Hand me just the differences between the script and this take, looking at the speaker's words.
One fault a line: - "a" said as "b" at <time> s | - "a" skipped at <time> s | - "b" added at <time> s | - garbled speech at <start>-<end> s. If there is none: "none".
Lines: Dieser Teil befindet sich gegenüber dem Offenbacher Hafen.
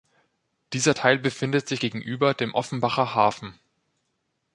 none